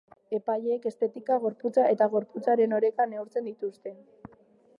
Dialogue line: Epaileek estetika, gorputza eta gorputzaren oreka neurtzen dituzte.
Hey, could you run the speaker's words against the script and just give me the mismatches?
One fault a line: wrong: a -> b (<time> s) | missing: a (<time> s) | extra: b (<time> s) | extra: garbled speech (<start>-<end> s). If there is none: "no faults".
no faults